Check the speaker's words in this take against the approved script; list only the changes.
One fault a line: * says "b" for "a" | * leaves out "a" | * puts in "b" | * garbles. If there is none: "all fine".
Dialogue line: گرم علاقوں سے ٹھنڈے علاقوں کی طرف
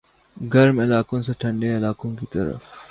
all fine